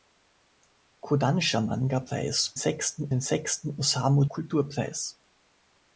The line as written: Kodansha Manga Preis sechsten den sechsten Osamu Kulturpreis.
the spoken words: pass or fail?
pass